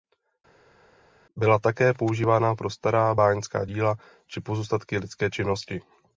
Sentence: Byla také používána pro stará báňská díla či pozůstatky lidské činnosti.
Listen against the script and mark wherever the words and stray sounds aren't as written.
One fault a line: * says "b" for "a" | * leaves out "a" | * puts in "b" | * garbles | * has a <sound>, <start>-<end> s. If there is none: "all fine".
all fine